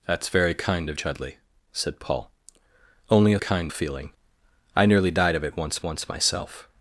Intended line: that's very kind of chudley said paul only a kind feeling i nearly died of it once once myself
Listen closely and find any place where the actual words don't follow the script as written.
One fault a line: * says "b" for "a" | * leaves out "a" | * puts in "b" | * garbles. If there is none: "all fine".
all fine